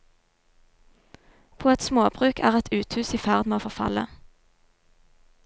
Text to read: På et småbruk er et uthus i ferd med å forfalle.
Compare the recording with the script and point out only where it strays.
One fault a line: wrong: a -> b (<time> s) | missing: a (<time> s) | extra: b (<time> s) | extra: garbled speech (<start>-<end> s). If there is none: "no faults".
no faults